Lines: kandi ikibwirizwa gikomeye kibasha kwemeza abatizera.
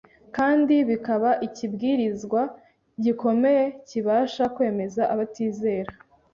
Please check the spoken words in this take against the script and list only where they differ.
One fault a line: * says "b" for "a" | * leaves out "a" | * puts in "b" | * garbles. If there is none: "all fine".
* puts in "bikaba"